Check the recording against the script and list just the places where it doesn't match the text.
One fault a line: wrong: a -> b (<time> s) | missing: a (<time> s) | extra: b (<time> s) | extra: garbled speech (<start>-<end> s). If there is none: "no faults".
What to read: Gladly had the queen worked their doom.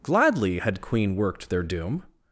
missing: the (0.8 s)